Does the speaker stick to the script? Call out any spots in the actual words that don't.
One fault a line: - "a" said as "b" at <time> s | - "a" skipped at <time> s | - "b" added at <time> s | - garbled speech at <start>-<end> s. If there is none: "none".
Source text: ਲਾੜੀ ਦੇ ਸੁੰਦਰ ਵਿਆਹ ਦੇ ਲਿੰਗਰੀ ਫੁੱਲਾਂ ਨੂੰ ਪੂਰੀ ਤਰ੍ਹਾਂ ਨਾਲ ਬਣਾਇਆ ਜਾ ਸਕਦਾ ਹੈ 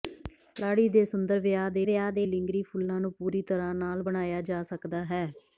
- "ਵਿਆਹ ਦੇ" added at 1.8 s